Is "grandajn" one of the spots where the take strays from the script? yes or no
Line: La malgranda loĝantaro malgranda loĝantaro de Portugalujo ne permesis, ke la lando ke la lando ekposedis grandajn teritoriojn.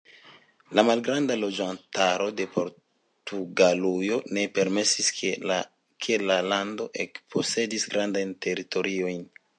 no